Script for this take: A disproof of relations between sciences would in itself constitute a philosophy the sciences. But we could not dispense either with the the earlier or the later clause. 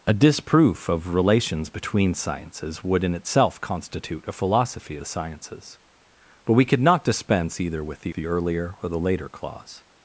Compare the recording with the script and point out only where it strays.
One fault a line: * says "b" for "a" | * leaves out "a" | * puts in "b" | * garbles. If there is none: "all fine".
all fine